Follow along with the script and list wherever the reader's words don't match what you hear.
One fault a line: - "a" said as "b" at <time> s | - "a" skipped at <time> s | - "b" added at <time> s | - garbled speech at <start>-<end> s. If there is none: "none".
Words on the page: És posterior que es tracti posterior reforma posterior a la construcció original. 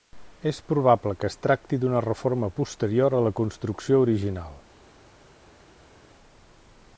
- "posterior" said as "probable" at 0.7 s
- "posterior" said as "d'una" at 1.8 s